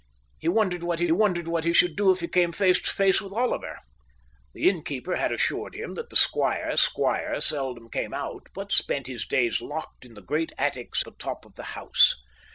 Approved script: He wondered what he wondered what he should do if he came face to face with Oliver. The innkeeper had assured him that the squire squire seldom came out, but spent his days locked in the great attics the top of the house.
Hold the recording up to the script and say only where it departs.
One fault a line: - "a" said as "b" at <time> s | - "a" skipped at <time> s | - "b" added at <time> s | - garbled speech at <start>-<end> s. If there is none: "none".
none